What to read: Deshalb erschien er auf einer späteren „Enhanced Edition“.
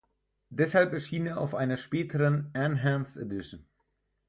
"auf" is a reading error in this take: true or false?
false